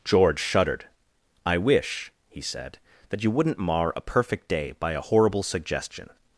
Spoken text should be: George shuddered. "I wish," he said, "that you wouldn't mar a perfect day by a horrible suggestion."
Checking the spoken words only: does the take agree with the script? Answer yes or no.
yes